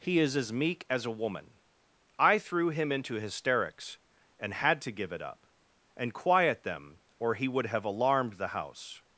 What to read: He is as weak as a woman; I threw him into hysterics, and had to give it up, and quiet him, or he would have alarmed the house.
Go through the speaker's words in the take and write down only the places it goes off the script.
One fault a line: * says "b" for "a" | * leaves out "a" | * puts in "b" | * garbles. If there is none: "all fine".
* says "meek" for "weak"
* says "them" for "him"